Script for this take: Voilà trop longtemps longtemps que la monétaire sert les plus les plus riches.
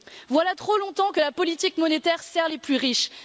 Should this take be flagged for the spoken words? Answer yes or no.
yes